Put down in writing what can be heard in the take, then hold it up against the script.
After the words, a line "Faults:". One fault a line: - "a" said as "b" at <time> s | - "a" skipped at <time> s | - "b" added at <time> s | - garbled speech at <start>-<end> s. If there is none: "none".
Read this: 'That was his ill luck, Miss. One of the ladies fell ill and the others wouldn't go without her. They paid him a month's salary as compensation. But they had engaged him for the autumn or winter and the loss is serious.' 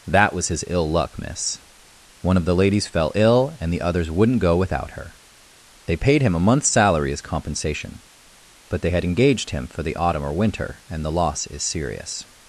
'That was his ill luck, Miss. One of the ladies fell ill and the others wouldn't go without her. They paid him a month's salary as compensation. But they had engaged him for the autumn or winter and the loss is serious.'
Faults:
none